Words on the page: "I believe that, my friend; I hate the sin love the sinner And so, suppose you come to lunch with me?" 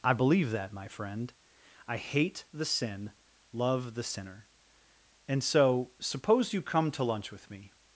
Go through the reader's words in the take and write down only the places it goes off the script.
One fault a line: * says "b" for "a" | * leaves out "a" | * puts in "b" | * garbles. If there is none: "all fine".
all fine